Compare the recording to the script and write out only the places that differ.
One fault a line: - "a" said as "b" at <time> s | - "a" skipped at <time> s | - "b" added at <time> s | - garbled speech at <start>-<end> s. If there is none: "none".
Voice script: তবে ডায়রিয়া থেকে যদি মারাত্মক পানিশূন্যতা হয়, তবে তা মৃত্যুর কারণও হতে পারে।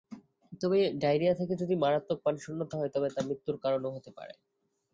none